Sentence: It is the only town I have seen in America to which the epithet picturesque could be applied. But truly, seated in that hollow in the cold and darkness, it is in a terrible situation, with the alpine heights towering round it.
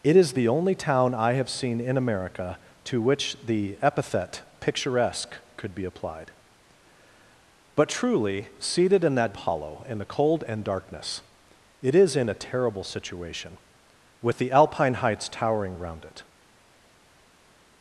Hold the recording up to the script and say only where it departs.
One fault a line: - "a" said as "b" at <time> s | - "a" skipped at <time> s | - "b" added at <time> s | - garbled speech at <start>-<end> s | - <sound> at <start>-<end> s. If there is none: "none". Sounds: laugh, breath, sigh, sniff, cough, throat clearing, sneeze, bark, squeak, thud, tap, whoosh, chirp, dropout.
none